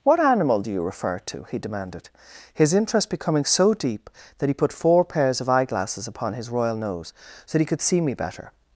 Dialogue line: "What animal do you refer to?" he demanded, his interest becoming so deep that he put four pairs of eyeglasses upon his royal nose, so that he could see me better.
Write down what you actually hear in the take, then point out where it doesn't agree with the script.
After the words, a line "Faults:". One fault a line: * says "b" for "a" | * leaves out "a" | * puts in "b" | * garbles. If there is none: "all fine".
"What animal do you refer to?" he demanded, his interest becoming so deep that he put four pairs of eyeglasses upon his royal nose, so that he could see me better.
Faults:
all fine